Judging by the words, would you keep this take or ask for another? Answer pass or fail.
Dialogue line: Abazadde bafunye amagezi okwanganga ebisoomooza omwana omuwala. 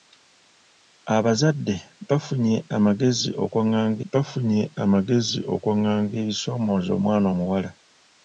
fail